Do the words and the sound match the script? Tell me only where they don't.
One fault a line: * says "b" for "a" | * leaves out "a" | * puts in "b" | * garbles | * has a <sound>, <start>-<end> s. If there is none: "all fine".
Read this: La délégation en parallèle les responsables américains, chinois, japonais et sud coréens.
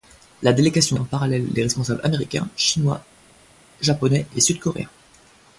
all fine